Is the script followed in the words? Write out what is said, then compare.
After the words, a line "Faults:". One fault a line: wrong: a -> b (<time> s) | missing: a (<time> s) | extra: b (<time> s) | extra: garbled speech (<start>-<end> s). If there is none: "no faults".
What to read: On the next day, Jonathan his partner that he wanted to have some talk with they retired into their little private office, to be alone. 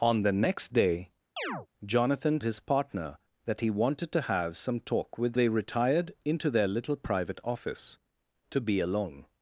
On the next day, Jonathan his partner that he wanted to have some talk with they retired into their little private office, to be alone.
Faults:
no faults